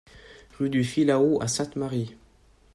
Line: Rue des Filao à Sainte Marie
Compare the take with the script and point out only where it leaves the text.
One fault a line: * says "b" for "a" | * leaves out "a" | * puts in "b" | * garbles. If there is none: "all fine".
* says "du" for "des"